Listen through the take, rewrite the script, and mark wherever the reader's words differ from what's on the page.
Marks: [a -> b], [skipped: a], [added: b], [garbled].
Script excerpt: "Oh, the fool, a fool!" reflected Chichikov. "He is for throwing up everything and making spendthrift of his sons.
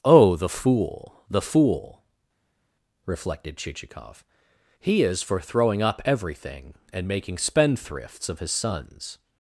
"Oh, the fool, [a -> the] fool!" reflected Chichikov. "He is for throwing up everything and making [spendthrift -> spendthrifts] of his sons.